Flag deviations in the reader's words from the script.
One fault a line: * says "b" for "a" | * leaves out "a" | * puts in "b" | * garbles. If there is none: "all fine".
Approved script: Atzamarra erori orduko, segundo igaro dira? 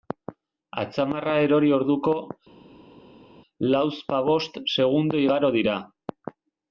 * puts in "lauzpabost"